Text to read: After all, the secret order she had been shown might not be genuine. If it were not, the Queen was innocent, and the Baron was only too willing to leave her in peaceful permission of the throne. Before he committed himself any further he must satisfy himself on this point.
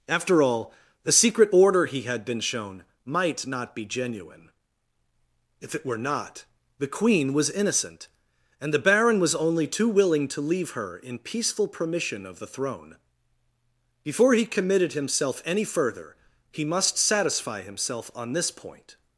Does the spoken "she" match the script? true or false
false